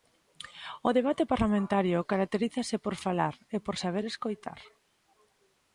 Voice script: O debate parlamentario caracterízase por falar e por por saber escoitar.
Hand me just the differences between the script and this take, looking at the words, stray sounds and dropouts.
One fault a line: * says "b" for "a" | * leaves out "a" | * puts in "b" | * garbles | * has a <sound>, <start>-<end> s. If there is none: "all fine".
* leaves out "por"